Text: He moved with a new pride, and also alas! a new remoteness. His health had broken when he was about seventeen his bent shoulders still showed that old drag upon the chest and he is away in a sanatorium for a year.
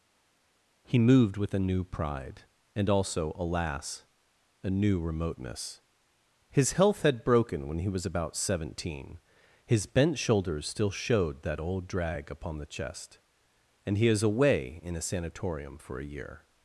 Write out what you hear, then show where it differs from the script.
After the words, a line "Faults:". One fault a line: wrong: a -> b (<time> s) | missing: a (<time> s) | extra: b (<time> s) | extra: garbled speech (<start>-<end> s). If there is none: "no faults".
He moved with a new pride, and also alas! a new remoteness. His health had broken when he was about seventeen his bent shoulders still showed that old drag upon the chest and he is away in a sanatorium for a year.
Faults:
no faults